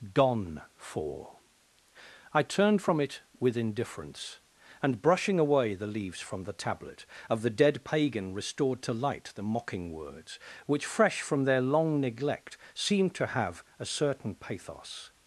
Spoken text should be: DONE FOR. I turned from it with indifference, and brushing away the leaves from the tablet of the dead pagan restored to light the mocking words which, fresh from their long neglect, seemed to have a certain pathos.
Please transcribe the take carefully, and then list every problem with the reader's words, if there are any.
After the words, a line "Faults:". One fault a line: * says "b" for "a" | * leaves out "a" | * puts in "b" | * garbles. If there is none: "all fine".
Gone FOR. I turned from it with indifference, and brushing away the leaves from the tablet of the dead pagan restored to light the mocking words which, fresh from their long neglect, seemed to have a certain pathos.
Faults:
* says "Gone" for "DONE"